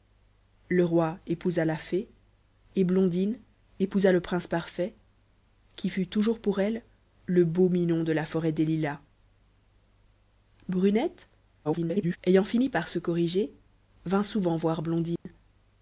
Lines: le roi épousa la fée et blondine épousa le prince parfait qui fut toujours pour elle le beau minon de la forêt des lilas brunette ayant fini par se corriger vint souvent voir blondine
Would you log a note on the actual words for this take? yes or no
yes